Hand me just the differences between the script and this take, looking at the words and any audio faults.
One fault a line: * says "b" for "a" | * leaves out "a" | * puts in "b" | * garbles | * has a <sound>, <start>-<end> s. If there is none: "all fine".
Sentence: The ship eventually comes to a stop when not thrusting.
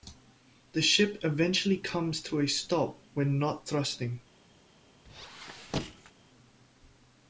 * has a squeak, 5.0-6.1 s